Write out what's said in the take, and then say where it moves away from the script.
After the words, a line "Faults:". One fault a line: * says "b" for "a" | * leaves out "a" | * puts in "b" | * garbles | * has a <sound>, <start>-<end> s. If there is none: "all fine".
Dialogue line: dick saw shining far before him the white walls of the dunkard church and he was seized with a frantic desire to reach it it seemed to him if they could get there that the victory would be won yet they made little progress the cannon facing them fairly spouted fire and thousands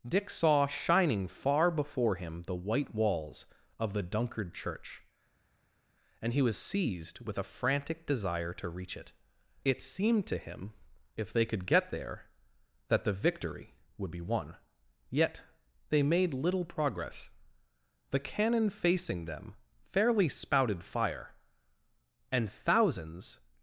dick saw shining far before him the white walls of the dunkard church and he was seized with a frantic desire to reach it it seemed to him if they could get there that the victory would be won yet they made little progress the cannon facing them fairly spouted fire and thousands
Faults:
all fine